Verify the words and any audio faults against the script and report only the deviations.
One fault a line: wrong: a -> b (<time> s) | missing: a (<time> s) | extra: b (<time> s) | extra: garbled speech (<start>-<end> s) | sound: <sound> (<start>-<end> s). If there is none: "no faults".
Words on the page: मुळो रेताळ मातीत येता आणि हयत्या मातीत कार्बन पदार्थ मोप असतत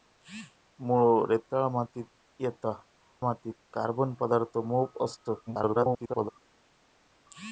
missing: आणि हयत्या (2.7 s)
extra: garbled speech (5.5-6.3 s)